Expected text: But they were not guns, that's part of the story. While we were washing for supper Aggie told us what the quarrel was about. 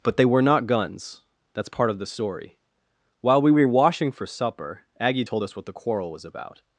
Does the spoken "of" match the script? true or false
true